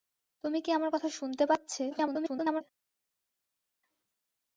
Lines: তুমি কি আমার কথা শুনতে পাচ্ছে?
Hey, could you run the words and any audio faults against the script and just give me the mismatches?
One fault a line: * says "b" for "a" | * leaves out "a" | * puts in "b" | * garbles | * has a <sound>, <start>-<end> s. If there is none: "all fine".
* garbles